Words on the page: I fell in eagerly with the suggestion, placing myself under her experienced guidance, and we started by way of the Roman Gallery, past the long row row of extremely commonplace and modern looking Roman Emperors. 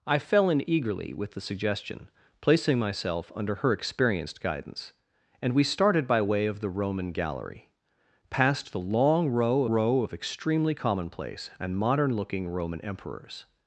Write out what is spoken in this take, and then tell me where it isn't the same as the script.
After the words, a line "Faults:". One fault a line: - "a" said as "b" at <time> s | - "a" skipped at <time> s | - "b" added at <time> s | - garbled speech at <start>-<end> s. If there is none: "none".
I fell in eagerly with the suggestion, placing myself under her experienced guidance, and we started by way of the Roman Gallery, past the long row row of extremely commonplace and modern looking Roman Emperors.
Faults:
none